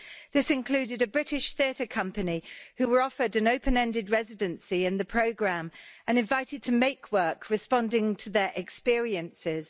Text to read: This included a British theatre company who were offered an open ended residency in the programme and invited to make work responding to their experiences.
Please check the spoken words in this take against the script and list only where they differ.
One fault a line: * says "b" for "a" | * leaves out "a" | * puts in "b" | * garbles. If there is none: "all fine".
all fine